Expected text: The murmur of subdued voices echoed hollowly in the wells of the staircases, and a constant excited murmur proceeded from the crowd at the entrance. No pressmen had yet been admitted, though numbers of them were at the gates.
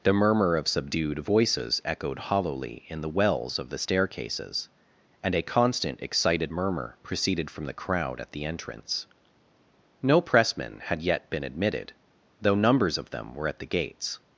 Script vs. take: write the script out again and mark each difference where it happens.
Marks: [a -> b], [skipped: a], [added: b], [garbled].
The murmur of subdued voices echoed hollowly in the wells of the staircases, and a constant excited murmur proceeded from the crowd at the entrance. No pressmen had yet been admitted, though numbers of them were at the gates.